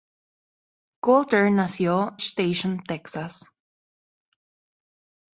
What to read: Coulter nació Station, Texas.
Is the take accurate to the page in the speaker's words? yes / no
yes